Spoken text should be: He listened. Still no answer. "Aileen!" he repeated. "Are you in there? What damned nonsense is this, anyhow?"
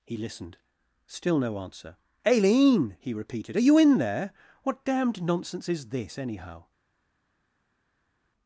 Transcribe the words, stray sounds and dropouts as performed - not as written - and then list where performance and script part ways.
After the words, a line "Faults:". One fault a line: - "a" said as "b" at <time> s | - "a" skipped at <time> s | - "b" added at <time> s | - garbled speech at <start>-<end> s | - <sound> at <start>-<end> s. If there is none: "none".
He listened. Still no answer. "Aileen!" he repeated. "Are you in there? What damned nonsense is this, anyhow?"
Faults:
none